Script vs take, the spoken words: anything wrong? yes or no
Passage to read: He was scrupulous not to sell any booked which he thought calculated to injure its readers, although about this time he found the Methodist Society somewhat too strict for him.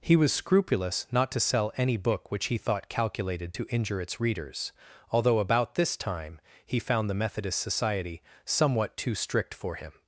yes